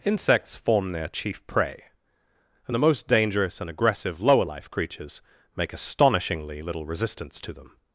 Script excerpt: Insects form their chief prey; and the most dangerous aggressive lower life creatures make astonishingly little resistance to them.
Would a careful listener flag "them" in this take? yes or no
no